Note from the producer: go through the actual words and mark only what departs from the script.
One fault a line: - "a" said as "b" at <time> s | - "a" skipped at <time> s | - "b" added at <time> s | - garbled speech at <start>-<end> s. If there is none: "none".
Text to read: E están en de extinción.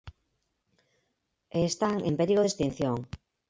- "perigo" added at 2.2 s